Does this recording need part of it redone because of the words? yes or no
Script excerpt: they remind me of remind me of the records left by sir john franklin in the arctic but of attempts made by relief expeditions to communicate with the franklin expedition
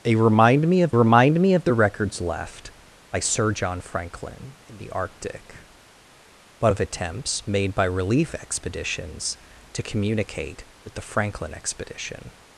no